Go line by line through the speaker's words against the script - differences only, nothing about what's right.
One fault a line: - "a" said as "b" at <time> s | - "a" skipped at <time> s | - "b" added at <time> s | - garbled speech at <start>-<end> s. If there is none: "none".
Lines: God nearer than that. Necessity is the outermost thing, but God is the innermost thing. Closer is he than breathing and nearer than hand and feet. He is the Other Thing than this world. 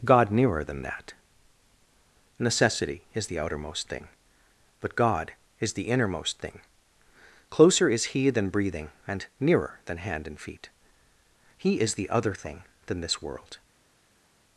none